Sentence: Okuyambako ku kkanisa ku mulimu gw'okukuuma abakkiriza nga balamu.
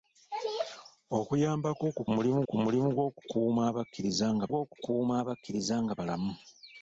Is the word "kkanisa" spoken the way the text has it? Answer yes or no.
no